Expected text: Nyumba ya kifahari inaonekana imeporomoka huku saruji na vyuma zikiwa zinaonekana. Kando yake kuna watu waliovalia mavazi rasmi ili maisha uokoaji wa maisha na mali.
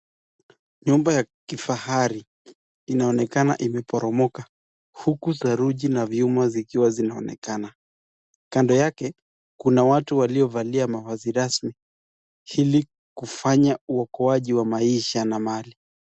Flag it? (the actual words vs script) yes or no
yes